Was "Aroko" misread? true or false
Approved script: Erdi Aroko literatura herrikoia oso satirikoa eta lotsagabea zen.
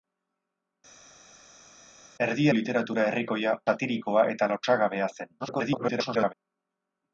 true